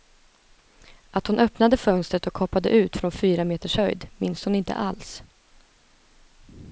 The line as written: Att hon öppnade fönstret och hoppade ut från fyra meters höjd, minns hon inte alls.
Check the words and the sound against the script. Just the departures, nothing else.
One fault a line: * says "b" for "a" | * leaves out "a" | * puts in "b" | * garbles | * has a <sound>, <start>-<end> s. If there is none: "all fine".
all fine